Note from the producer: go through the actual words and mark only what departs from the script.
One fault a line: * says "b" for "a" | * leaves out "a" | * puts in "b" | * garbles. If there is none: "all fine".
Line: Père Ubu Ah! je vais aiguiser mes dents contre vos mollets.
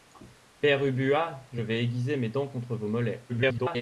* garbles